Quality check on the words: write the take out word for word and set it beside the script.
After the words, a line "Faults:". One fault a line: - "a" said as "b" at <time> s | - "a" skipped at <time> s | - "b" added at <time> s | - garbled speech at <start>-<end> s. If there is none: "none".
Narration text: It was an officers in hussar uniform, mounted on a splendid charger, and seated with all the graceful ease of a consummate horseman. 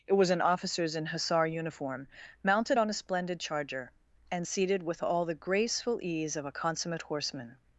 It was an officers in hussar uniform, mounted on a splendid charger, and seated with all the graceful ease of a consummate horseman.
Faults:
none